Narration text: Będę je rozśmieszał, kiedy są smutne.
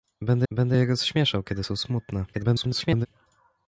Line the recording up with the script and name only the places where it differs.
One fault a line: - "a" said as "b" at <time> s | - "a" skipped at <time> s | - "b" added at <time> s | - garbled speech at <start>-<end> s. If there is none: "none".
- "będę" added at 0.5 s
- garbled speech at 2.3-3.1 s